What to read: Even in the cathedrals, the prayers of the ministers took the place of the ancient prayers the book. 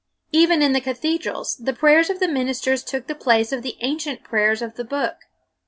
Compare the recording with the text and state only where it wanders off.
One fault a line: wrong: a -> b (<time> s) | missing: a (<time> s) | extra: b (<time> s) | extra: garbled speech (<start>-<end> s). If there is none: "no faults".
extra: of (4.6 s)